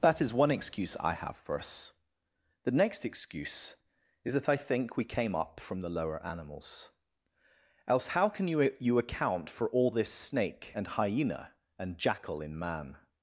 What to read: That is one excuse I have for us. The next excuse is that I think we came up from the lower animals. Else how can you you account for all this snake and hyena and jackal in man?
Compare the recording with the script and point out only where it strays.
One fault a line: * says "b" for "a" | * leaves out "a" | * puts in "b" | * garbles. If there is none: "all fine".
all fine